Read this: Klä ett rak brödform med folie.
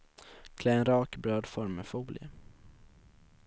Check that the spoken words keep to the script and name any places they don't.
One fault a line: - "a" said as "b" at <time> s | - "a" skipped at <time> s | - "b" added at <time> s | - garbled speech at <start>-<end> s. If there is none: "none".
- "ett" said as "en" at 0.7 s